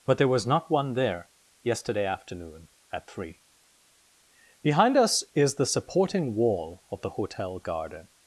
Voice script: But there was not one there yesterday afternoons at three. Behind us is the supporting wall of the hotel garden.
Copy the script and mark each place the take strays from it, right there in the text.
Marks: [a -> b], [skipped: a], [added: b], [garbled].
But there was not one there yesterday [afternoons -> afternoon] at three. Behind us is the supporting wall of the hotel garden.